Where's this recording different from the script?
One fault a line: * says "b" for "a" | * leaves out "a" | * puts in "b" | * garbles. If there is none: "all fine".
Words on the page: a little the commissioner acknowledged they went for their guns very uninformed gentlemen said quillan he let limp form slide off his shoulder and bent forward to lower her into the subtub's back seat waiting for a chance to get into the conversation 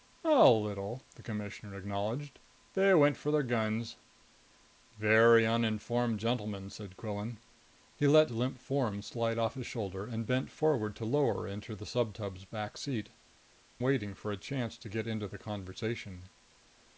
all fine